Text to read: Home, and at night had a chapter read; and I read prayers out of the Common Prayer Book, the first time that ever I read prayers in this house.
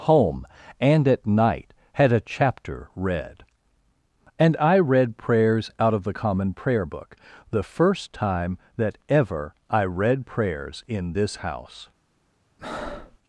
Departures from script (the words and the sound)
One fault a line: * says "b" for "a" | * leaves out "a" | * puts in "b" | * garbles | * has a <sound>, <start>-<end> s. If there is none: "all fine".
* has a breath, 12.6-13.2 s